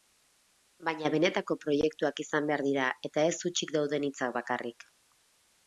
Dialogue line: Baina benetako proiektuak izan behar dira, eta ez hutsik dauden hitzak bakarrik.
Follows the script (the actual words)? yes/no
yes